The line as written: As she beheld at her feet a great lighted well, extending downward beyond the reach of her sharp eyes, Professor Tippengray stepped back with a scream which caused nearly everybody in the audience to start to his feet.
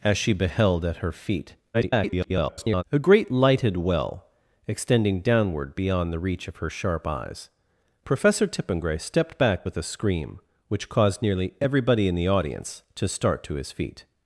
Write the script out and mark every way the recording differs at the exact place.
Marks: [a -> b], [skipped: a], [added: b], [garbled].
As she beheld at her feet [garbled] a great lighted well, extending downward beyond the reach of her sharp eyes, Professor Tippengray stepped back with a scream which caused nearly everybody in the audience to start to his feet.